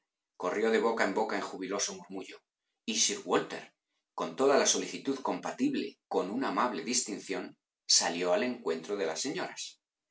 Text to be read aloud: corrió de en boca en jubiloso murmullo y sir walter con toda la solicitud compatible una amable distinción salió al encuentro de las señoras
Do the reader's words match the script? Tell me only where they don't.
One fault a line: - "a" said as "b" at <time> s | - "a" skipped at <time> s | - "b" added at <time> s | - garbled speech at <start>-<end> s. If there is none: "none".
- "boca" added at 0.8 s
- "con" added at 6.1 s